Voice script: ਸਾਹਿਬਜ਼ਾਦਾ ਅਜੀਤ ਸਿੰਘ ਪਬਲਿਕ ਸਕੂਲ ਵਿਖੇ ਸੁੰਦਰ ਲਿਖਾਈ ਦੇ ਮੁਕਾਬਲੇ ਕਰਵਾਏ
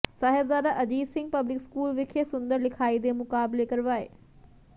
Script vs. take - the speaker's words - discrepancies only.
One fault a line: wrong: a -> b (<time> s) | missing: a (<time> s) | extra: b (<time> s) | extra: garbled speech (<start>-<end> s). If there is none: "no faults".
no faults